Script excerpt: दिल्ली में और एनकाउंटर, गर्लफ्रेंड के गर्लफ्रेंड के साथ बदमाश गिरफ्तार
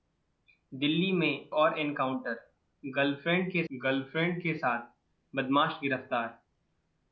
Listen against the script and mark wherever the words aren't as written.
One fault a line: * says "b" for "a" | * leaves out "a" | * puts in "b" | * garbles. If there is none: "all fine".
all fine